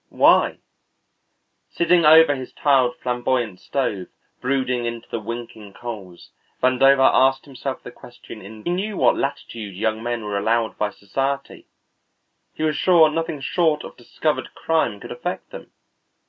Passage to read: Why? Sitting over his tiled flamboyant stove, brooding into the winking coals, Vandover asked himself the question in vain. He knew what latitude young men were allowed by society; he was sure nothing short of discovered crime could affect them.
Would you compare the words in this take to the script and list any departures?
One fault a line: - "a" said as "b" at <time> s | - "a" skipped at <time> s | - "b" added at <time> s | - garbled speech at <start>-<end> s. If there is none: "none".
- "vain He" skipped at 8.7 s